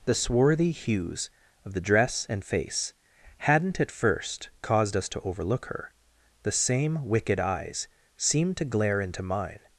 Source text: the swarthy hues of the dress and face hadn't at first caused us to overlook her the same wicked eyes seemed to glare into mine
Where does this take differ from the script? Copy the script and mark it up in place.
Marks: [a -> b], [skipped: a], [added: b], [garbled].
the swarthy hues of the dress and face hadn't at first caused us to overlook her the same wicked eyes seemed to glare into mine